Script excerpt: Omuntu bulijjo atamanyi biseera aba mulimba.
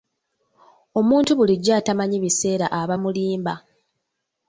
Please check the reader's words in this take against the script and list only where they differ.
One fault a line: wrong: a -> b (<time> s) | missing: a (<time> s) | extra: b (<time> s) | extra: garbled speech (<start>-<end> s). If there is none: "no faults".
no faults